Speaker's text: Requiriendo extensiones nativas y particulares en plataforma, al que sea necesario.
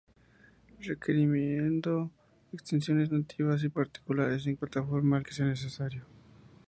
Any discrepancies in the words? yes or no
no